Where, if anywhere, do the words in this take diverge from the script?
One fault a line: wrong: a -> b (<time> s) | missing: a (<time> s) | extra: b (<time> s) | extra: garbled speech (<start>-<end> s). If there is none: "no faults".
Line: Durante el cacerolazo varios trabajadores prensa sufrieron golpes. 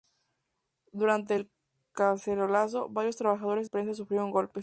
no faults